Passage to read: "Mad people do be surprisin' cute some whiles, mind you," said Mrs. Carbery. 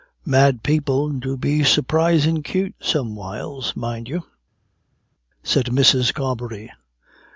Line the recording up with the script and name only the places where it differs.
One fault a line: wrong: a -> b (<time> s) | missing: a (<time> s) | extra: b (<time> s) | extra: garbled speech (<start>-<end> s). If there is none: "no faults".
no faults